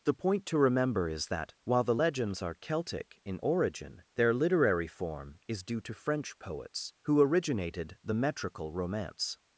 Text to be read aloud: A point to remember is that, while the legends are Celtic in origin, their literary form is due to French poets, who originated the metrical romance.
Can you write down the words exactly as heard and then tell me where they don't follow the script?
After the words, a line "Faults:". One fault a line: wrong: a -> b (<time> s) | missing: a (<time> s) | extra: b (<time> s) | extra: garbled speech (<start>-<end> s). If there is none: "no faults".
The point to remember is that, while the legends are Celtic in origin, their literary form is due to French poets, who originated the metrical romance.
Faults:
wrong: A -> The (0.0 s)